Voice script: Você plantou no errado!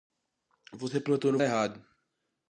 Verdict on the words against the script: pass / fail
pass